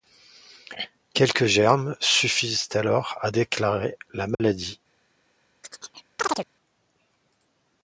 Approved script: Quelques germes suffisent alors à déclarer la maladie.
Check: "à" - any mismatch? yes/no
no